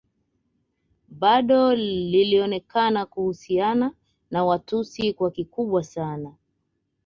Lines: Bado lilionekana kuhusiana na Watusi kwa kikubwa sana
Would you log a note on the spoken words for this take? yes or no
no